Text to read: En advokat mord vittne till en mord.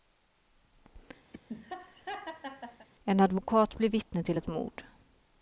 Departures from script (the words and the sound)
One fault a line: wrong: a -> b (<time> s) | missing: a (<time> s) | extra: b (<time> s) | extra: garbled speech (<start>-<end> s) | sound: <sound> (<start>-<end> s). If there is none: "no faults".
sound: laugh (1.3-2.9 s)
wrong: mord -> blir (3.8 s)
wrong: en -> ett (4.4 s)